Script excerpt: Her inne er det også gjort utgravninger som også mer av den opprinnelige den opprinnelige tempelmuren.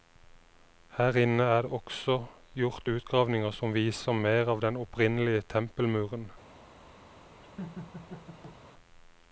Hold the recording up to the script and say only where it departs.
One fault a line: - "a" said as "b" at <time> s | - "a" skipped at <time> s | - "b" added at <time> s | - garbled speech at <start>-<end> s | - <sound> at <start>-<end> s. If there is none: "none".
- "også" said as "viser" at 3.8 s
- "den opprinnelige" skipped at 5.4 s
- laugh at 7.4-8.6 s